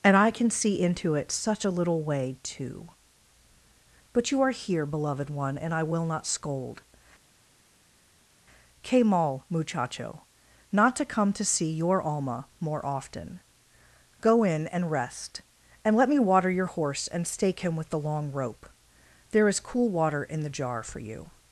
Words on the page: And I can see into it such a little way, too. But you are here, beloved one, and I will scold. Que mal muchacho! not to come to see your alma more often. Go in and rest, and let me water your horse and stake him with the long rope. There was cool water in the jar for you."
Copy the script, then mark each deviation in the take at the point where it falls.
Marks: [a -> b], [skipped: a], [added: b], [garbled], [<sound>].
And I can see into it such a little way, too. But you are here, beloved one, and I will [added: not] scold. Que mal muchacho! not to come to see your alma more often. Go in and rest, and let me water your horse and stake him with the long rope. There [was -> is] cool water in the jar for you."